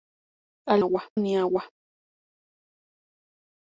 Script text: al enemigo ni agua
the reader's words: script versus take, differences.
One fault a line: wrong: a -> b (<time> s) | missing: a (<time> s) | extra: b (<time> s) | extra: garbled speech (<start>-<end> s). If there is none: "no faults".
wrong: enemigo -> agua (0.8 s)